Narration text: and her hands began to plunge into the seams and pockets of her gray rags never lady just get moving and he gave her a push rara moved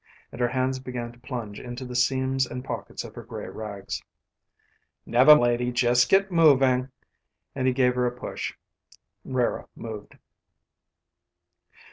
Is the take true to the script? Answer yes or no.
yes